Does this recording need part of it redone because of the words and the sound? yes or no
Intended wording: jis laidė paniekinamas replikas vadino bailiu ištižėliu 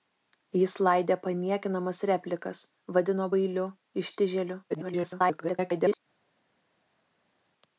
yes